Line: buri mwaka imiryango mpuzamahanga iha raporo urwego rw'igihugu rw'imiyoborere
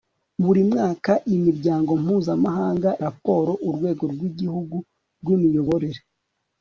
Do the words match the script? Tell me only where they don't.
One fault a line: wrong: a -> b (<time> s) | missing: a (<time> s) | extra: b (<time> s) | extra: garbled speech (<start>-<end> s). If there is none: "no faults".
missing: iha (2.9 s)